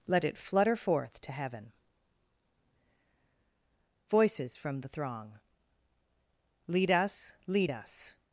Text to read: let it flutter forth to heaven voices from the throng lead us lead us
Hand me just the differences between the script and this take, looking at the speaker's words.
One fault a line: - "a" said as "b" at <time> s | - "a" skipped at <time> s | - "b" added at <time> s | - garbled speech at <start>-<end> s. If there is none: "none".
none